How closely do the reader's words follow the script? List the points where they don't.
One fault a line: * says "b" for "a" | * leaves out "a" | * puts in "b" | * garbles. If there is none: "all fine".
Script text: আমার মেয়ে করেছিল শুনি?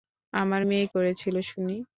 all fine